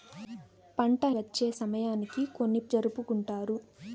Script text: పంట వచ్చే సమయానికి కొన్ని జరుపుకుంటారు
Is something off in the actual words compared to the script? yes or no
no